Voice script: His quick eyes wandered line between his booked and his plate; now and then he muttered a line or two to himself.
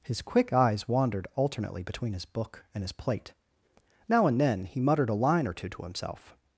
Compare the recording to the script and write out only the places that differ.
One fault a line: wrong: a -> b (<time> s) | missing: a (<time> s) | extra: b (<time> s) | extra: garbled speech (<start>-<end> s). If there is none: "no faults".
wrong: line -> alternately (1.4 s)
wrong: booked -> book (2.2 s)